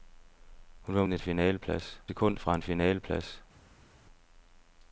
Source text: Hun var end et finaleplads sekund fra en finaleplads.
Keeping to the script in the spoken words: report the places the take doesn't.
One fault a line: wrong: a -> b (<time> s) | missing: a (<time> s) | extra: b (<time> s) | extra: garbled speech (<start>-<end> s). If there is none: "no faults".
no faults